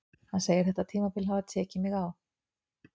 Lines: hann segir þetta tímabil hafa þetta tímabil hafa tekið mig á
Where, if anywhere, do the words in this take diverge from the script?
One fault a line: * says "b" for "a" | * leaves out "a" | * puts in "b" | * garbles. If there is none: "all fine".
* leaves out "þetta tímabil hafa"